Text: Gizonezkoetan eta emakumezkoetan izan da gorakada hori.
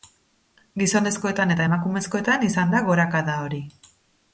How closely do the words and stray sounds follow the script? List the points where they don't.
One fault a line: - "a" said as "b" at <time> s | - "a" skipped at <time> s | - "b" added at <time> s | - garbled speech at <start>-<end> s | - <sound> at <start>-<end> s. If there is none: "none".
none